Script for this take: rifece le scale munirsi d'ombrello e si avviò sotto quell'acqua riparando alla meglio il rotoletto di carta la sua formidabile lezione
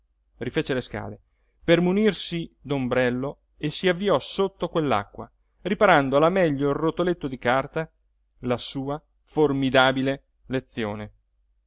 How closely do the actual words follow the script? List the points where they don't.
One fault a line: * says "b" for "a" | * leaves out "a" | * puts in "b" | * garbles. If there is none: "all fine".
* puts in "per"